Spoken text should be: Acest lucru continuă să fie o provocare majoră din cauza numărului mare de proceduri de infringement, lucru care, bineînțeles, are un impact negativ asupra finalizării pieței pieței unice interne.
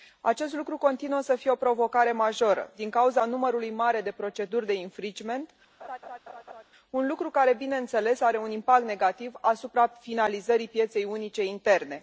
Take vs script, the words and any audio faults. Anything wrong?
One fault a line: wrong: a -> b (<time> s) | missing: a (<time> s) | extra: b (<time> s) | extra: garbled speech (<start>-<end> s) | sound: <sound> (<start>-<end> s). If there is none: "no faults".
sound: laugh (5.8-6.6 s)
extra: un (6.9 s)
missing: pieței (11.0 s)